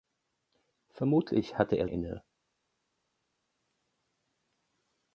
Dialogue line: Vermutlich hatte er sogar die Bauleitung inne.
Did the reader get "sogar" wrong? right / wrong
wrong